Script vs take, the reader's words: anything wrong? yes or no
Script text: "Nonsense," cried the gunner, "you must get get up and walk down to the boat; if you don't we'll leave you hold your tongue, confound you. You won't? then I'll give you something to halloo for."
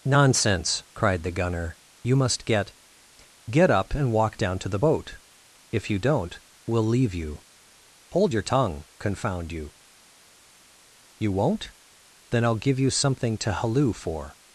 no